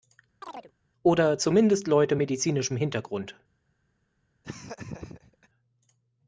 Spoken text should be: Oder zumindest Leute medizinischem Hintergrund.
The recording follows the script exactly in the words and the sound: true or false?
false